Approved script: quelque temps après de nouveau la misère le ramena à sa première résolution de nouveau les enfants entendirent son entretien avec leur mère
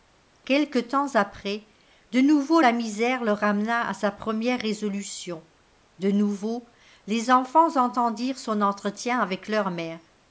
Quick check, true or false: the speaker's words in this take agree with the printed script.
true